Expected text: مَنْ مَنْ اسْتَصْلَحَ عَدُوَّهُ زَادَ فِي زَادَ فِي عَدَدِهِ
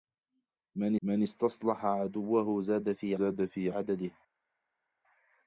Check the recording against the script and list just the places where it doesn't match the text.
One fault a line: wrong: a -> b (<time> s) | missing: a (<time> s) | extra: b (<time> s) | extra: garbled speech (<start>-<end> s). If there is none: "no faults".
no faults